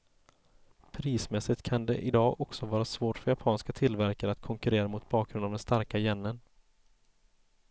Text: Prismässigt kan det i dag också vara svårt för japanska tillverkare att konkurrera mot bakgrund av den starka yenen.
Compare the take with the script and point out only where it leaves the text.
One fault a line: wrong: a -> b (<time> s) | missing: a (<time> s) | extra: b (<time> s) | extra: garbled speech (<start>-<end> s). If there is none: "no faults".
no faults